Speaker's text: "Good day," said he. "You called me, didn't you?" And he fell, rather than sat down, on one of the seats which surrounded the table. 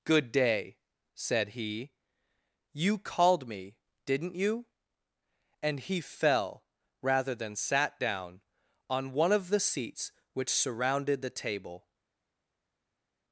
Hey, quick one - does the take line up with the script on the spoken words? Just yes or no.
yes